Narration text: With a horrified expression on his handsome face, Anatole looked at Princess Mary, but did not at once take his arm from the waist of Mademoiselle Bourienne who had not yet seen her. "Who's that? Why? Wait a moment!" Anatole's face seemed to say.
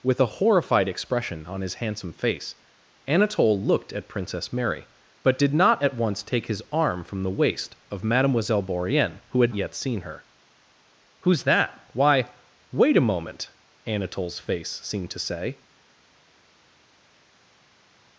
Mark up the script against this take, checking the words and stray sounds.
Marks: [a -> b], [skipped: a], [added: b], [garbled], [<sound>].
With a horrified expression on his handsome face, Anatole looked at Princess Mary, but did not at once take his arm from the waist of Mademoiselle Bourienne who had [skipped: not] yet seen her. "Who's that? Why? Wait a moment!" Anatole's face seemed to say.